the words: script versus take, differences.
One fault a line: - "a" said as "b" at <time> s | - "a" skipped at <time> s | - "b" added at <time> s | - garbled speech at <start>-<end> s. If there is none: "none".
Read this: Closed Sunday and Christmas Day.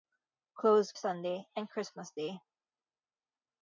none